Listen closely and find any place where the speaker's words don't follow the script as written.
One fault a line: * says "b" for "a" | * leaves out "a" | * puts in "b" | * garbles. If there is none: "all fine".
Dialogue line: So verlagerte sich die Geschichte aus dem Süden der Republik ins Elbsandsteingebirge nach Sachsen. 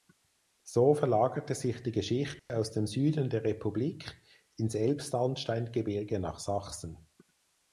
all fine